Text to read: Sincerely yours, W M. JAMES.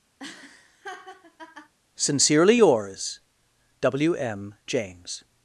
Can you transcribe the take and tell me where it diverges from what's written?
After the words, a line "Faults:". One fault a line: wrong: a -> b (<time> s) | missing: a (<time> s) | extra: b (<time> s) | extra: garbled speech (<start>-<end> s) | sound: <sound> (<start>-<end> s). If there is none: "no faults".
Sincerely yours, W M. JAMES.
Faults:
sound: laugh (0.2-1.7 s)